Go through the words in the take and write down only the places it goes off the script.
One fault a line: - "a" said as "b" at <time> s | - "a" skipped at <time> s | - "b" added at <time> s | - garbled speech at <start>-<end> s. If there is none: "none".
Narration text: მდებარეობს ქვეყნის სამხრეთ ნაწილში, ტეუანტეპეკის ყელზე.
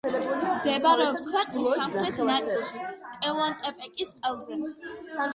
none